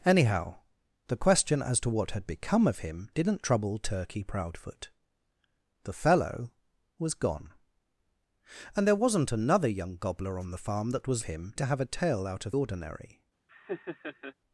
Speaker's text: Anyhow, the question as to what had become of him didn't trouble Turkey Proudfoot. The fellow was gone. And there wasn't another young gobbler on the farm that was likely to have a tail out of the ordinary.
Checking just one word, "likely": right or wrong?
wrong